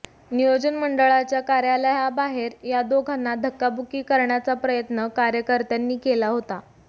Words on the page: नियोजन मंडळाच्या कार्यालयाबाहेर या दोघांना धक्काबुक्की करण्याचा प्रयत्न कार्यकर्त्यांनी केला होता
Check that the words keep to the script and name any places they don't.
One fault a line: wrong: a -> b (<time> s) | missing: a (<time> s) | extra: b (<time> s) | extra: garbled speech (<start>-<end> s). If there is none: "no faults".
no faults